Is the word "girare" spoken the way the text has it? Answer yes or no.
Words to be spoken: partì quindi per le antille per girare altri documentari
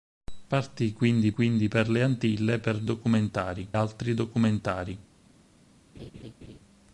no